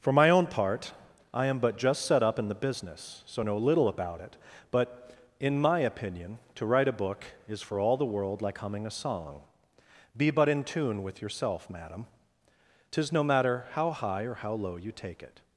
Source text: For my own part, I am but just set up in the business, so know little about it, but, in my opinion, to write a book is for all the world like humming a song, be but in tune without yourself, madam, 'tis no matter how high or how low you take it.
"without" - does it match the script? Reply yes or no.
no